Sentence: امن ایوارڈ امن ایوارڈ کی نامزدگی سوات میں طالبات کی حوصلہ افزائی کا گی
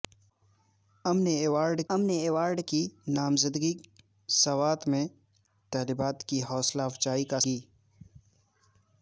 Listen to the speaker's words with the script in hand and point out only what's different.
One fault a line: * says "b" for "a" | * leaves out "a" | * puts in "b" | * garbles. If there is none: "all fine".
all fine